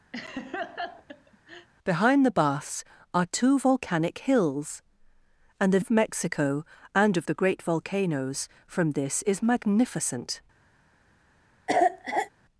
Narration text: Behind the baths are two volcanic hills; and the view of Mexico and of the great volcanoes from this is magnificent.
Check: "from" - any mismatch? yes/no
no